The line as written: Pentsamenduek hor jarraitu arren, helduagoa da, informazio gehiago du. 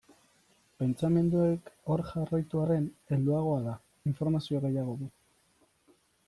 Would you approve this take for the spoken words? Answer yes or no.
yes